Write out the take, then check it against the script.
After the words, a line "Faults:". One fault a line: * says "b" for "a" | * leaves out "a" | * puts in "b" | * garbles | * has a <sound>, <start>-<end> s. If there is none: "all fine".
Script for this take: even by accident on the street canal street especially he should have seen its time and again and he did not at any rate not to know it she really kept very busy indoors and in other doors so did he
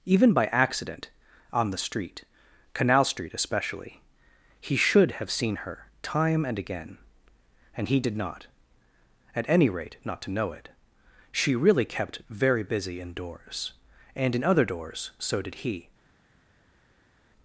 even by accident on the street canal street especially he should have seen her time and again and he did not at any rate not to know it she really kept very busy indoors and in other doors so did he
Faults:
* says "her" for "its"